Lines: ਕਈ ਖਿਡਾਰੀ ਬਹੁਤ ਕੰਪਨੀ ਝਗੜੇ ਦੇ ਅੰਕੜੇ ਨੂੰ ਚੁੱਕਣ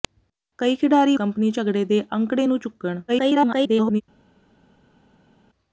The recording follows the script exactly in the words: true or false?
false